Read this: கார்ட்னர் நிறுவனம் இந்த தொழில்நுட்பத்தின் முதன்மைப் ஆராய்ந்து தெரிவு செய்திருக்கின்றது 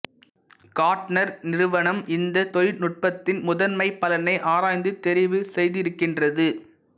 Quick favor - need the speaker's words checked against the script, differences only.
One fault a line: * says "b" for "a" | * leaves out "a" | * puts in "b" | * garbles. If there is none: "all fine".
* puts in "பலனை"